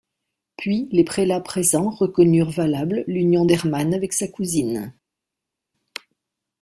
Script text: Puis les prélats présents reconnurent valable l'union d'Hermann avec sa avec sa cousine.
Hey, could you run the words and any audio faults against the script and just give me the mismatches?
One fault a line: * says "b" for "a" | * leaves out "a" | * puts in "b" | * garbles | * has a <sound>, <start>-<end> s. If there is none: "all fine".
* leaves out "avec sa"